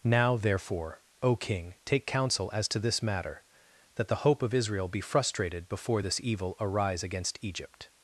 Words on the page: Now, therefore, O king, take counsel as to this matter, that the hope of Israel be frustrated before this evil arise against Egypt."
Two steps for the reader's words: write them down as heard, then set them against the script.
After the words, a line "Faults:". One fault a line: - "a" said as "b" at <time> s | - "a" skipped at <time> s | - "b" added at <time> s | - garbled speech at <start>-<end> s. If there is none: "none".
Now, therefore, O king, take counsel as to this matter, that the hope of Israel be frustrated before this evil arise against Egypt."
Faults:
none